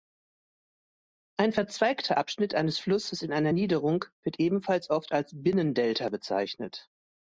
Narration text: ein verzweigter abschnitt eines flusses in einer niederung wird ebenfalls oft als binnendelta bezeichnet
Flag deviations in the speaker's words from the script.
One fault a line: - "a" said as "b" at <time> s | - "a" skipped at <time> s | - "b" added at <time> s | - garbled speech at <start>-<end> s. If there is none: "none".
none